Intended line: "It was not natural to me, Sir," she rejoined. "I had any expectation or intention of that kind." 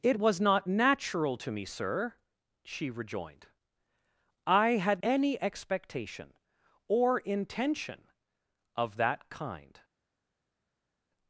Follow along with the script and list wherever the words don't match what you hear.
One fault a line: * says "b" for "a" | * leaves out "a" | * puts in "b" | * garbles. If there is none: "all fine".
all fine